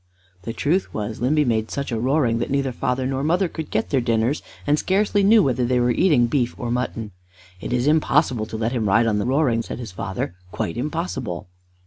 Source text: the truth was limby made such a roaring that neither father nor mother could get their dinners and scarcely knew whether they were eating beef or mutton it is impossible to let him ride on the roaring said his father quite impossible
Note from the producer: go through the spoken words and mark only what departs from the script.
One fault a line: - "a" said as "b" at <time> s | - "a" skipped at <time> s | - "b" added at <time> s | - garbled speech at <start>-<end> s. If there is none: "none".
none